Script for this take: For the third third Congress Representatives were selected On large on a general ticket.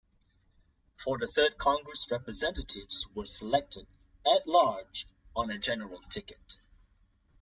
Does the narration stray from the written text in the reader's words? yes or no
yes